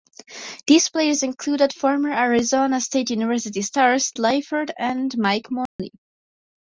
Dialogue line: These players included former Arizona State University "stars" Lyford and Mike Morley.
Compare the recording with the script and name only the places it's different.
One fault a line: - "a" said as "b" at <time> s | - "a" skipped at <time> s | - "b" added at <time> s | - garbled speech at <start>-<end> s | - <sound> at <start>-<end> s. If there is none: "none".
- dropout at 5.7-5.8 s